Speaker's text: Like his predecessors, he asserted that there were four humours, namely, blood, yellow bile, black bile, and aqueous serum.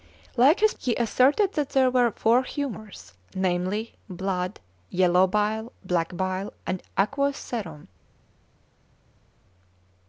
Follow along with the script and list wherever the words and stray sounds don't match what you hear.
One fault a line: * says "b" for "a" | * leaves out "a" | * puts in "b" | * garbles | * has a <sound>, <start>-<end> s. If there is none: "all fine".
* leaves out "predecessors"